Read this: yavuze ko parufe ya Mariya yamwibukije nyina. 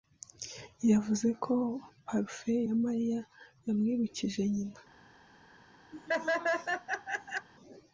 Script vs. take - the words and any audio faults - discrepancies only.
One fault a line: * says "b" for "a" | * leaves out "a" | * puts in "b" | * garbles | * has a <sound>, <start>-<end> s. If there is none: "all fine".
* has a laugh, 5.9-7.5 s